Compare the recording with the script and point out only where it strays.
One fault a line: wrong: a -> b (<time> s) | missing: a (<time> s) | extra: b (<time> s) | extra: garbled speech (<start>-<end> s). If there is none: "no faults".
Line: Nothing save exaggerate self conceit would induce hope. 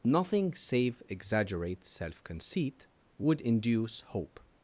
no faults